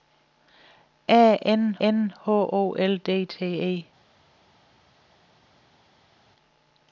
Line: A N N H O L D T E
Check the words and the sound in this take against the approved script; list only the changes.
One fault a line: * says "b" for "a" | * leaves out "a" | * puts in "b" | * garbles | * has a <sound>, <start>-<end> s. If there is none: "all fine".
all fine